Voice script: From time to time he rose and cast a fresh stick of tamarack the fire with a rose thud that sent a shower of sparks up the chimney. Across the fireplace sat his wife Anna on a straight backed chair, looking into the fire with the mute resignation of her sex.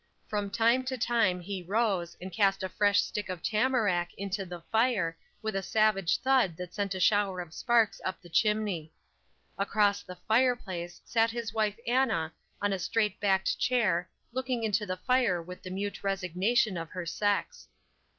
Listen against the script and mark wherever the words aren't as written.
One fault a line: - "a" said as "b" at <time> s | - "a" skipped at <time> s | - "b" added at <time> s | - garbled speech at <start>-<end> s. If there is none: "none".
- "into" added at 4.1 s
- "rose" said as "savage" at 5.6 s